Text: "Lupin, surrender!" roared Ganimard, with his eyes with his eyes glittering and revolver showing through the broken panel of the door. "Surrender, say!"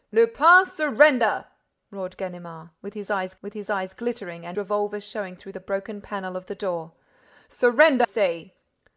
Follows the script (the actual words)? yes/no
yes